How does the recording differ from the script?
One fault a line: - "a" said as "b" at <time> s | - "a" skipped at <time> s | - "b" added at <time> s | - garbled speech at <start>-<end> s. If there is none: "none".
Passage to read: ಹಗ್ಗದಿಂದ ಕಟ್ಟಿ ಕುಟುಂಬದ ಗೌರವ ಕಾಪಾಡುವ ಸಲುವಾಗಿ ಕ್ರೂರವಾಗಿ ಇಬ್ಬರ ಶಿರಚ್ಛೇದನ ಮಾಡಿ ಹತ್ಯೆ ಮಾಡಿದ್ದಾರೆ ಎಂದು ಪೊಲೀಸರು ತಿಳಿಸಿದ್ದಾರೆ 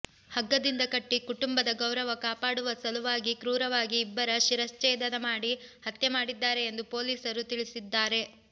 none